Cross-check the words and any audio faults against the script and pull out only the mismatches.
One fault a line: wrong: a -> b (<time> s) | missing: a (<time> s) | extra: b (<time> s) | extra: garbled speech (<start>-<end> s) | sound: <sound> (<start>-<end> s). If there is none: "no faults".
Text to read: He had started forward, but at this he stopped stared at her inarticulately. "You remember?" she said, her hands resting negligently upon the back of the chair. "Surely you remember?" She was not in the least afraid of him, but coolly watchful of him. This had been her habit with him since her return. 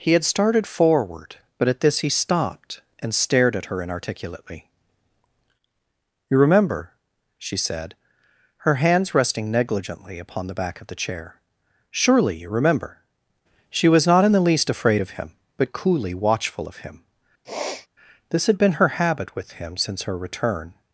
extra: and (3.0 s)
sound: sniff (17.4-17.9 s)